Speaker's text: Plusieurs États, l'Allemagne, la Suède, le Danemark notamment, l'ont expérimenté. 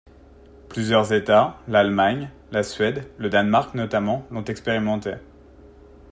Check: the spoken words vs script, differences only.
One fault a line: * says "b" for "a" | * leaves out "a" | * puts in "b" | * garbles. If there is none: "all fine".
all fine